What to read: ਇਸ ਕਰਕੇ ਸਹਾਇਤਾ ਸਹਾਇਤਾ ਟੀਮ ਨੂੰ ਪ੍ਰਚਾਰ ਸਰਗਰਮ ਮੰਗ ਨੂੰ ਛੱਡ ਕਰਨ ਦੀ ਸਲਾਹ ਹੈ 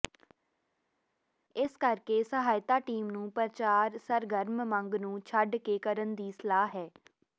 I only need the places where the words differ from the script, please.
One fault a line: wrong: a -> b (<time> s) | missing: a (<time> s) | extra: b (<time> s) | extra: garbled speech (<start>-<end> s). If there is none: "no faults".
missing: ਸਹਾਇਤਾ (2.8 s)
extra: ਕੇ (5.6 s)